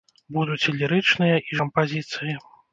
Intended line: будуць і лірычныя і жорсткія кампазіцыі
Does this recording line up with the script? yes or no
no